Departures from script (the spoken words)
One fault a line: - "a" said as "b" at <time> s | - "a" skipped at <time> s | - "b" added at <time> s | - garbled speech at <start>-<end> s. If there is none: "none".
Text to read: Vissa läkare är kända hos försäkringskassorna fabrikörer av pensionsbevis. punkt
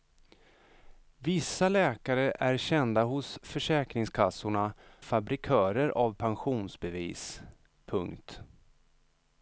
none